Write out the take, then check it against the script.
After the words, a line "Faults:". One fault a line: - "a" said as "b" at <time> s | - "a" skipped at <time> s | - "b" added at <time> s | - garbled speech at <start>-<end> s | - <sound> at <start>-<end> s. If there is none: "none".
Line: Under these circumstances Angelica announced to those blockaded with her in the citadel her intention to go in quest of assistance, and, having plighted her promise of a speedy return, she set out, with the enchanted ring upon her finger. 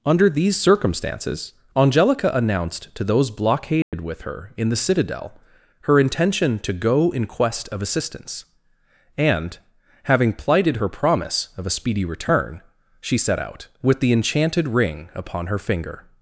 Under these circumstances Angelica announced to those blockaded with her in the citadel her intention to go in quest of assistance, and, having plighted her promise of a speedy return, she set out, with the enchanted ring upon her finger.
Faults:
- dropout at 3.8-3.9 s